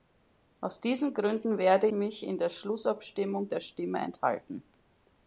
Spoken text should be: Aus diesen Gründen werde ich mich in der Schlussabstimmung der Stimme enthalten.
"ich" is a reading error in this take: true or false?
true